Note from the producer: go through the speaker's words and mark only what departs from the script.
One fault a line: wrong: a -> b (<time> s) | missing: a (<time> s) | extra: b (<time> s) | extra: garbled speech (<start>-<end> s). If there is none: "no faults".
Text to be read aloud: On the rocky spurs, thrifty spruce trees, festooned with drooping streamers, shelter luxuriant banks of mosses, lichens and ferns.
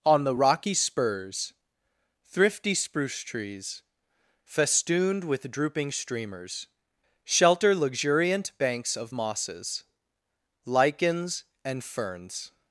no faults